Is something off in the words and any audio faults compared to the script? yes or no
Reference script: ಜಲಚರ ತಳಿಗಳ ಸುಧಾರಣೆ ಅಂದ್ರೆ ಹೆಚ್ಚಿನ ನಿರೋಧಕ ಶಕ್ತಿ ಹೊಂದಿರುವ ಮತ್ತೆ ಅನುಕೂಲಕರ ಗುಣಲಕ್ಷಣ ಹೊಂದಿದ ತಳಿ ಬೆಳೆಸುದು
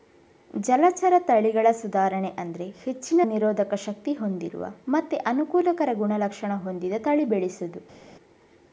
no